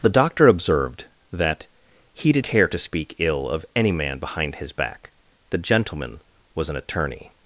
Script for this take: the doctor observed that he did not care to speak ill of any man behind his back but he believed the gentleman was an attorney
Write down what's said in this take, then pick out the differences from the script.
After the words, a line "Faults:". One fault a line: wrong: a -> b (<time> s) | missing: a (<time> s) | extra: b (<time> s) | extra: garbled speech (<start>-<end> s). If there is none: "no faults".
the doctor observed that he did care to speak ill of any man behind his back the gentleman was an attorney
Faults:
missing: not (2.5 s)
missing: but he believed (5.1 s)